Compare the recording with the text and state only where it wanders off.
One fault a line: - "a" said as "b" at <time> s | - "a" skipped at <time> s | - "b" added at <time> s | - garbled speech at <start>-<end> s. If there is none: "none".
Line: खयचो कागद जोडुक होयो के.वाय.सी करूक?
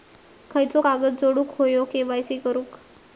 none